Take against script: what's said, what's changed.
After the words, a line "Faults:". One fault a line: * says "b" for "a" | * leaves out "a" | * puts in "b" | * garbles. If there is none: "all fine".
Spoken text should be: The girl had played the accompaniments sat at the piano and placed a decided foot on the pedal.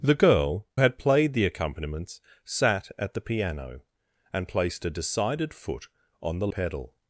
The girl had played the accompaniments sat at the piano and placed a decided foot on the pedal.
Faults:
all fine